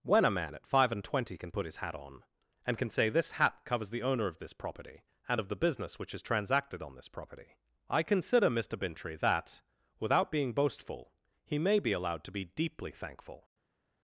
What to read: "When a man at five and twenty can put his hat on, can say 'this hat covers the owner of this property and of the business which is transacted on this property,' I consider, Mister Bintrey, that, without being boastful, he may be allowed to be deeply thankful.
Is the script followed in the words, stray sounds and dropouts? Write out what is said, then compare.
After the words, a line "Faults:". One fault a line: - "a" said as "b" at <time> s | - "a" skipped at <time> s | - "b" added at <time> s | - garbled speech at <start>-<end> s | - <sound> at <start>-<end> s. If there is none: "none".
"When a man at five and twenty can put his hat on, and can say 'this hat covers the owner of this property and of the business which is transacted on this property,' I consider, Mister Bintrey, that, without being boastful, he may be allowed to be deeply thankful.
Faults:
- "and" added at 2.6 s